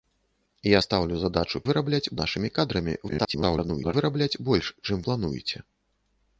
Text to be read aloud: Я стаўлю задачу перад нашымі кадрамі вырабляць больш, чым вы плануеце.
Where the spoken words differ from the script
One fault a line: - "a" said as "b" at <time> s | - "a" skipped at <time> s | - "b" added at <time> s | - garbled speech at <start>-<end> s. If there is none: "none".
- "перад" said as "вырабляць" at 1.7 s
- garbled speech at 3.1-3.9 s
- "вы" skipped at 5.0 s